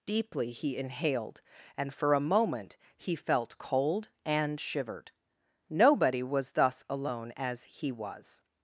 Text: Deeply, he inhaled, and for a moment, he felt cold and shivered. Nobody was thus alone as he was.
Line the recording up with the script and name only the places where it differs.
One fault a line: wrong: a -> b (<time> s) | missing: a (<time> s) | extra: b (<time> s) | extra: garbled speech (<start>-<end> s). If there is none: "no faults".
no faults